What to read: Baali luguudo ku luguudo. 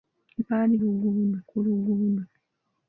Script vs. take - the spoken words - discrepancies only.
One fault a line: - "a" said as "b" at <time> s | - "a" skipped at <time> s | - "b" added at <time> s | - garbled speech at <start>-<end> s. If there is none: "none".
none